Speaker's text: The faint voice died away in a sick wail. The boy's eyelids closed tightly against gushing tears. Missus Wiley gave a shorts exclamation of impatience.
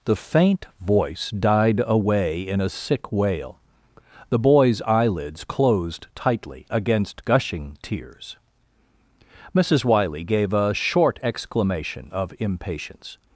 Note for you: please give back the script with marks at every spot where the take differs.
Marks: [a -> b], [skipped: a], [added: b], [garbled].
The faint voice died away in a sick wail. The boy's eyelids closed tightly against gushing tears. Missus Wiley gave a [shorts -> short] exclamation of impatience.